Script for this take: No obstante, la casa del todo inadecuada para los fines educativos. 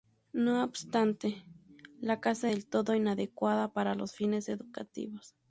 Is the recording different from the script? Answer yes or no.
no